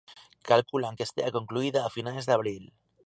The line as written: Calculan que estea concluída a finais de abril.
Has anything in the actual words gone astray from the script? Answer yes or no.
no